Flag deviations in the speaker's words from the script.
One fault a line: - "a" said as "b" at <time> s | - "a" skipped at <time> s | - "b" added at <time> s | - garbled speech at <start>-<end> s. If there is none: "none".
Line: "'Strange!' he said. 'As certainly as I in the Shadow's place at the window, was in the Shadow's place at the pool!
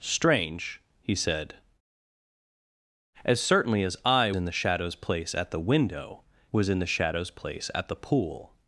none